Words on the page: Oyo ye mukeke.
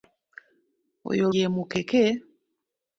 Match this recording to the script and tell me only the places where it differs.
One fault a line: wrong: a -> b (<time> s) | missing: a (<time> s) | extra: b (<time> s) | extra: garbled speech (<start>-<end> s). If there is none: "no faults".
no faults